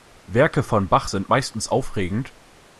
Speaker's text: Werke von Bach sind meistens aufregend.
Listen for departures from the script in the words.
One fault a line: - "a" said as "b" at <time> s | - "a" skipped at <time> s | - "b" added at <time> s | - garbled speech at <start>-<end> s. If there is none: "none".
none